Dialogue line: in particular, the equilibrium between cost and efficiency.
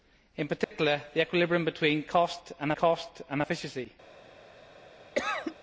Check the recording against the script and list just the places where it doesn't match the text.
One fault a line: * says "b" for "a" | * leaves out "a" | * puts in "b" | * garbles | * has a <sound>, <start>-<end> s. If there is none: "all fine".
* has a dropout, 0.6-0.7 s
* puts in "cost and"
* has a cough, 5.2-5.6 s